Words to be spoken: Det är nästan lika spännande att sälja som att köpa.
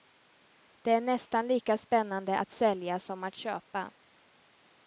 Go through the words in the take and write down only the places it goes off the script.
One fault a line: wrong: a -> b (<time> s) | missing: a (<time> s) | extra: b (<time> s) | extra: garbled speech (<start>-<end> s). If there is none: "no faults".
no faults